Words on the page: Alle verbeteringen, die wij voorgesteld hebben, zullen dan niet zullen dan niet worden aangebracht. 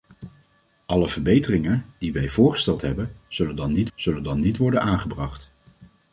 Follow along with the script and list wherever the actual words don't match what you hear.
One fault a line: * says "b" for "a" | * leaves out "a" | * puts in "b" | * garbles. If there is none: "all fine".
all fine